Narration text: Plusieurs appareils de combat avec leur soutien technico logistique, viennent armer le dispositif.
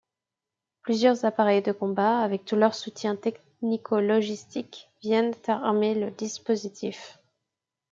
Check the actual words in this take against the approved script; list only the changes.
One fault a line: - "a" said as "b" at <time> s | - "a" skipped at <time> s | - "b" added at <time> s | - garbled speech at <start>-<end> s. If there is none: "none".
- "tout" added at 2.4 s